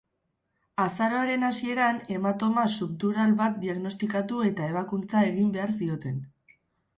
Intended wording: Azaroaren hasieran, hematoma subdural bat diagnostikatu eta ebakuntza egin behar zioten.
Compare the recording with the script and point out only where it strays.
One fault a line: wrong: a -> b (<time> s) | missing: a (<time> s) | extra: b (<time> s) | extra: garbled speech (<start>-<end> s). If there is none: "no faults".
no faults